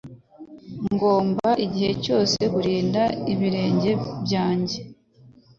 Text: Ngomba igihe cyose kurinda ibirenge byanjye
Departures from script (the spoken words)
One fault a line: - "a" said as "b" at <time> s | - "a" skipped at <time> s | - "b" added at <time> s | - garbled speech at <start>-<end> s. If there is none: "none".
none